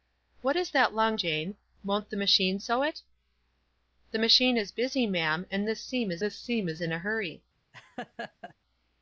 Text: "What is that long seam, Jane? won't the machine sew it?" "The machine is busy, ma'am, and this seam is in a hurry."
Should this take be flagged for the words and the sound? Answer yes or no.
yes